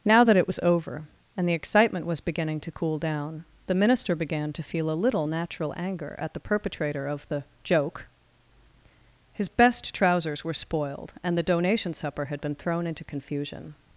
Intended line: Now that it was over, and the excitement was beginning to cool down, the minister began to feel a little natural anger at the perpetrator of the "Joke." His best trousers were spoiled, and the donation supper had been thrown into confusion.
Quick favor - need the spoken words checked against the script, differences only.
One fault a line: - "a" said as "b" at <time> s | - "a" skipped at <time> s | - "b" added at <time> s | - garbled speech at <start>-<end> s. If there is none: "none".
none